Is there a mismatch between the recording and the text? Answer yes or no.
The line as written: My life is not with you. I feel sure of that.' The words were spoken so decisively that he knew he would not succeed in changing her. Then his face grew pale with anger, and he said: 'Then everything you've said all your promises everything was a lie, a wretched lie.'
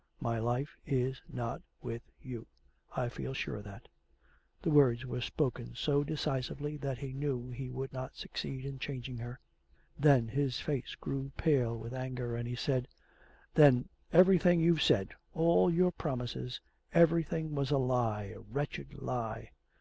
no